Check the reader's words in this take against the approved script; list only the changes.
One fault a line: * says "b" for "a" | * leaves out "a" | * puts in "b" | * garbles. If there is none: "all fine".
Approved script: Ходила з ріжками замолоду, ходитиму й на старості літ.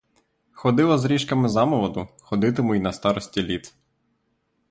all fine